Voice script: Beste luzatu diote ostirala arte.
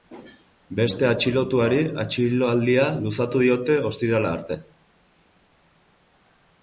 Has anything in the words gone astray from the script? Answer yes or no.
yes